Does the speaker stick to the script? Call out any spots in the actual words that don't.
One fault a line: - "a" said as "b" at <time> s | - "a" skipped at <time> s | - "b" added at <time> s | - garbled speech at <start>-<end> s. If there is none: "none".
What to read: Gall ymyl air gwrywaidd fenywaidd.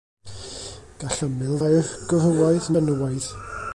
none